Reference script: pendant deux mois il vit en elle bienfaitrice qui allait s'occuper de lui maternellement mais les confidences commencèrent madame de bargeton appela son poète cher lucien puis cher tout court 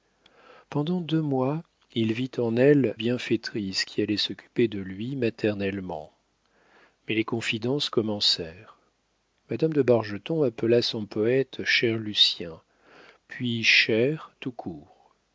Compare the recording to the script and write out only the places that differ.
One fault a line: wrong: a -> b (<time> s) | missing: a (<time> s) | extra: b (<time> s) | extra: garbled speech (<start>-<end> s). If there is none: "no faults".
no faults